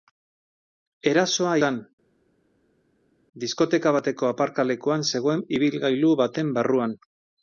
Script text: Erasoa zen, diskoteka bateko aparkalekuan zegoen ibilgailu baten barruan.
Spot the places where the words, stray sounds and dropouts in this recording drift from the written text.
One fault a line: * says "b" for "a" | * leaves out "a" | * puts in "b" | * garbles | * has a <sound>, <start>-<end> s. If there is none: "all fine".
all fine